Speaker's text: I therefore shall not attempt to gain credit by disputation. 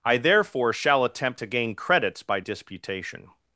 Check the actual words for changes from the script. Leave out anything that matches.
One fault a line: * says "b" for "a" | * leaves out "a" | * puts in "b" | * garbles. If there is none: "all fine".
* leaves out "not"
* says "credits" for "credit"